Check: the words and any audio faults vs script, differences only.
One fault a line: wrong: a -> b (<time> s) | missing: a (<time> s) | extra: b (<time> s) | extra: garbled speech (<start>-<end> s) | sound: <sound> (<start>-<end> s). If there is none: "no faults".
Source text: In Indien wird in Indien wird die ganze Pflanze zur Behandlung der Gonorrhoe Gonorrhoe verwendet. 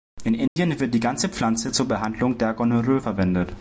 sound: dropout (0.5-0.6 s)
missing: in Indien wird (0.9 s)
missing: Gonorrhoe (3.0 s)